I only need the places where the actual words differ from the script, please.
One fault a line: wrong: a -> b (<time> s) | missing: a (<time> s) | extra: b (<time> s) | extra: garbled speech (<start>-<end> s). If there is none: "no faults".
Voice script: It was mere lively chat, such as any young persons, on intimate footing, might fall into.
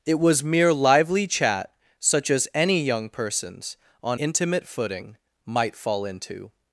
no faults